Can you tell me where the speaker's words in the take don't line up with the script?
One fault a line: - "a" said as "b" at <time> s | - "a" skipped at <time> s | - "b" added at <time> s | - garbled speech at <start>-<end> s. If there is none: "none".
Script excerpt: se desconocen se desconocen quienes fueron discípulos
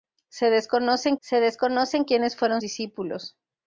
none